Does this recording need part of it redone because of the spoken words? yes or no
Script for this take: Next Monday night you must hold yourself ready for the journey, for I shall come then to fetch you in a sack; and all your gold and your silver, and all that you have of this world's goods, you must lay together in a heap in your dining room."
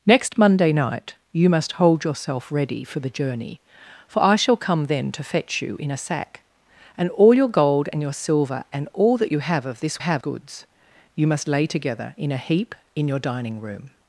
yes